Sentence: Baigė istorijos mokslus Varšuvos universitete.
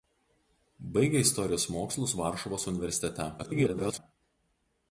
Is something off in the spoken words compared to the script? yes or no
yes